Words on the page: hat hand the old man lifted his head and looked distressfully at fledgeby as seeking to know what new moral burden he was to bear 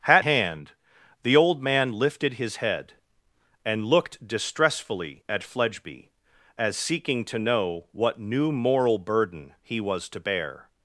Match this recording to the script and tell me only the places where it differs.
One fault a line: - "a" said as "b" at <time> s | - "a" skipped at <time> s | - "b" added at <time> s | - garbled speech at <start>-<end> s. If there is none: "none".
none